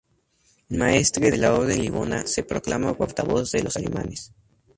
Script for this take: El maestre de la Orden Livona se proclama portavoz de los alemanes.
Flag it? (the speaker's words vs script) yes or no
no